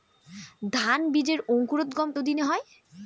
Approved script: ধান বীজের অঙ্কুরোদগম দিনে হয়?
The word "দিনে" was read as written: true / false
true